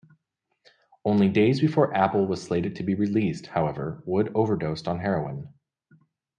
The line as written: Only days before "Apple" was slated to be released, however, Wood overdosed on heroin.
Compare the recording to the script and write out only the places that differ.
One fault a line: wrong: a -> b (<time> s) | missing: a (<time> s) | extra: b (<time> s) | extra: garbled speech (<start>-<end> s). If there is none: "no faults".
no faults